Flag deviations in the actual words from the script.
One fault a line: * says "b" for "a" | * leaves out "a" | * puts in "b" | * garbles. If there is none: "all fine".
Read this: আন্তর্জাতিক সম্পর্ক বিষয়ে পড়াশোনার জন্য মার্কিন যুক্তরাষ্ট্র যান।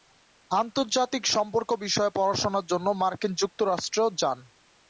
all fine